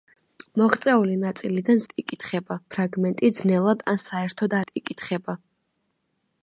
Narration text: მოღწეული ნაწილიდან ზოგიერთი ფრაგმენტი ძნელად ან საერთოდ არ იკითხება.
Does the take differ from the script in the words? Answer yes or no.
yes